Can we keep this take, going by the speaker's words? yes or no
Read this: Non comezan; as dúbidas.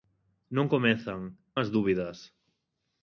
yes